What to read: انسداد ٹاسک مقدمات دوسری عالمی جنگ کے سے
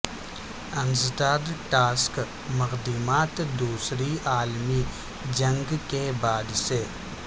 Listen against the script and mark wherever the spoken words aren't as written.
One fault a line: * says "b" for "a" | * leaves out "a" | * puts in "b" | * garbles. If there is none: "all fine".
* puts in "بعد"